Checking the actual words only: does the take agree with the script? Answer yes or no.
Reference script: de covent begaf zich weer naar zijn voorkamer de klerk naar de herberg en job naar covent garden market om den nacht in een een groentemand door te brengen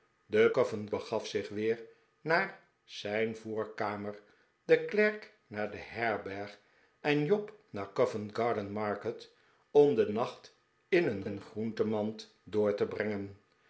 yes